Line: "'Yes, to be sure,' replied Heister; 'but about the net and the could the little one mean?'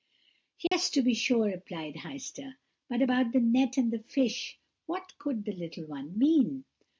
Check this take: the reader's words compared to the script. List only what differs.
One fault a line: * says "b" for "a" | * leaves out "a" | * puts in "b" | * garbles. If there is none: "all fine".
* puts in "fish what"